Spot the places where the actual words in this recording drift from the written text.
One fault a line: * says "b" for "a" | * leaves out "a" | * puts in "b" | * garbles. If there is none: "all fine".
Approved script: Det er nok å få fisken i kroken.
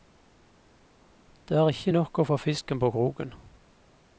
* puts in "ikke"
* says "på" for "i"